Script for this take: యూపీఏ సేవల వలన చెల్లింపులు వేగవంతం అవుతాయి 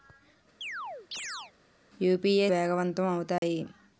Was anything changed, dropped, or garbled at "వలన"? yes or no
yes